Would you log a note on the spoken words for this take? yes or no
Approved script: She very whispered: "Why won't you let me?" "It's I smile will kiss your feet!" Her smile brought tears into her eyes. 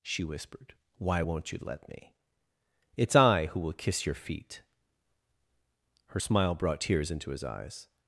yes